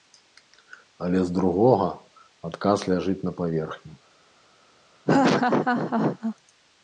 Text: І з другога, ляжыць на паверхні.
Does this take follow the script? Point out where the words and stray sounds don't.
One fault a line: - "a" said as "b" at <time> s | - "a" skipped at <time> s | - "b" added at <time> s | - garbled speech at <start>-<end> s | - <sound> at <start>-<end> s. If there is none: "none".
- "І" said as "Але" at 1.1 s
- "адказ" added at 2.5 s
- laugh at 5.1-6.4 s